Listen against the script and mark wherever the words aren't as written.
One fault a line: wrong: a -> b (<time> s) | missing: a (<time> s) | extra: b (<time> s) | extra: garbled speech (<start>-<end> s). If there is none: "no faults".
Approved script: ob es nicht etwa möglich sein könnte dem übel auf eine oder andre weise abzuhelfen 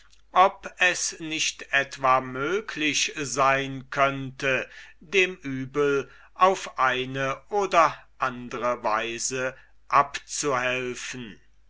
no faults